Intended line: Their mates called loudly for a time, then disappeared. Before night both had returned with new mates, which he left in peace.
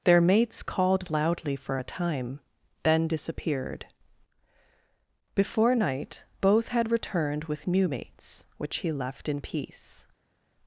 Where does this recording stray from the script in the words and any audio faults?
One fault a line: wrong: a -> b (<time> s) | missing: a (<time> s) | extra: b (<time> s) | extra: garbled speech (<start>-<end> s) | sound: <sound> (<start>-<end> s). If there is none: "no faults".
no faults